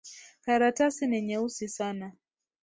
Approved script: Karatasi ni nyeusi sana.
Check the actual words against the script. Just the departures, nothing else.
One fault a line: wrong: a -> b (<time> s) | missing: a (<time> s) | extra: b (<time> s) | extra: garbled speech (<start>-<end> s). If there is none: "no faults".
no faults